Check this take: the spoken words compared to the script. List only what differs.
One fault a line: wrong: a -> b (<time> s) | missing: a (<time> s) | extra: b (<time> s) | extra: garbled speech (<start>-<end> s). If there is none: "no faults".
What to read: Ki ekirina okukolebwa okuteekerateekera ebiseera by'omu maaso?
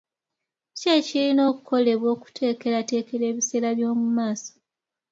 no faults